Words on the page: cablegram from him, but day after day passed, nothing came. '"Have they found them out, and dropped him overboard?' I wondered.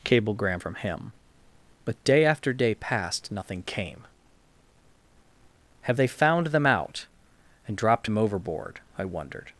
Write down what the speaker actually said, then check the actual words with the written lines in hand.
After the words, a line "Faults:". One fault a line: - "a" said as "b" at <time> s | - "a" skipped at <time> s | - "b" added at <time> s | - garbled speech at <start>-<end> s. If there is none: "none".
cablegram from him, but day after day passed, nothing came. '"Have they found them out, and dropped him overboard?' I wondered.
Faults:
none